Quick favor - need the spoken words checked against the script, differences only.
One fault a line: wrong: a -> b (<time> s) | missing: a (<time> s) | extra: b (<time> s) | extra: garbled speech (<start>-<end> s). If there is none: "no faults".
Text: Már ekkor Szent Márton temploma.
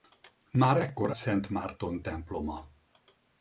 no faults